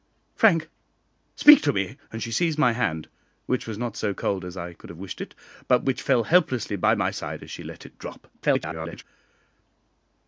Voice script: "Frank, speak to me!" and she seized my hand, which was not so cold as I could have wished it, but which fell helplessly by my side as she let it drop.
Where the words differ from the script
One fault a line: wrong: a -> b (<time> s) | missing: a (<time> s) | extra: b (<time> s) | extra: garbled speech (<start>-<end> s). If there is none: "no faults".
extra: garbled speech (8.3-9.0 s)